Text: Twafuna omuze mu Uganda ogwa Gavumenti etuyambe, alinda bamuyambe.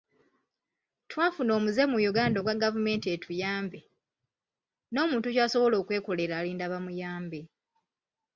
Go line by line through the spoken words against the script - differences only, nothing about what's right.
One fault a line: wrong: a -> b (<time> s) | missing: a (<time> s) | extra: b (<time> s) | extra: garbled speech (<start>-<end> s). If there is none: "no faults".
extra: n'omuntu kyasobola okwekolera (4.9 s)